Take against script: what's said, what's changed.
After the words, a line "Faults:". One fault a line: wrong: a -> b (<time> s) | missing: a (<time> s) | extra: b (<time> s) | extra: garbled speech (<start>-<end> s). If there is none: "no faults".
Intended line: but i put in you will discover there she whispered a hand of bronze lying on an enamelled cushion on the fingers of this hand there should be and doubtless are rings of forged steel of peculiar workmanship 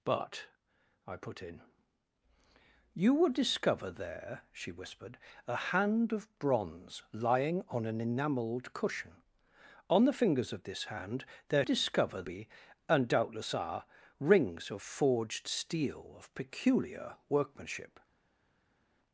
but i put in you will discover there she whispered a hand of bronze lying on an enamelled cushion on the fingers of this hand there discover be and doubtless are rings of forged steel of peculiar workmanship
Faults:
wrong: should -> discover (11.6 s)